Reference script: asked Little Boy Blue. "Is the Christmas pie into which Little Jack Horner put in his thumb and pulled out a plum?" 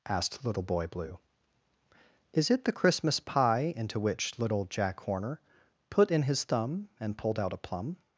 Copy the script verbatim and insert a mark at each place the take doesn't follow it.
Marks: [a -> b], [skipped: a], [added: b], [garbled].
asked Little Boy Blue. "Is [added: it] the Christmas pie into which Little Jack Horner put in his thumb and pulled out a plum?"